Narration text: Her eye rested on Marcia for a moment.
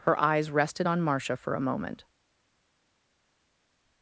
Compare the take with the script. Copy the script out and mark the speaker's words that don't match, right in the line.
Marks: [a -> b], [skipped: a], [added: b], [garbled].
Her [eye -> eyes] rested on Marcia for a moment.